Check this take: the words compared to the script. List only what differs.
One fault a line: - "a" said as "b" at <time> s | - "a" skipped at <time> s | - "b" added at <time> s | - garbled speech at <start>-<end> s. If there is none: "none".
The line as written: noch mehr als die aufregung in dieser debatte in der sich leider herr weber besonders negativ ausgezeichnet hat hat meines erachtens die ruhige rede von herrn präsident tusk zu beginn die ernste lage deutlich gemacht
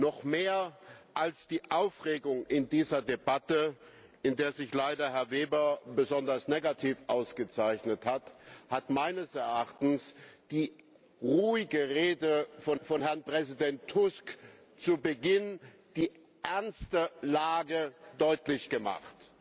- "von" added at 12.8 s